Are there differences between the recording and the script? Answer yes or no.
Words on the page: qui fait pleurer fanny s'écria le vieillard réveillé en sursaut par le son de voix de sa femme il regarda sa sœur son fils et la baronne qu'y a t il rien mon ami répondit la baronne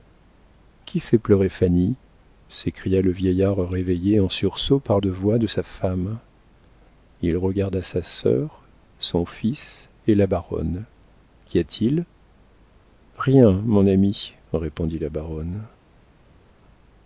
yes